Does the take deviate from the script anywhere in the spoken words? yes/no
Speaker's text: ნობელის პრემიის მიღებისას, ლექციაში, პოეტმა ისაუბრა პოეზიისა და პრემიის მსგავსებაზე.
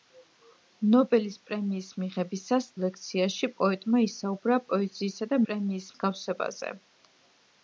no